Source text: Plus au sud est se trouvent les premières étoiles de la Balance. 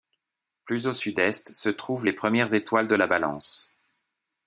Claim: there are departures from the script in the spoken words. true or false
false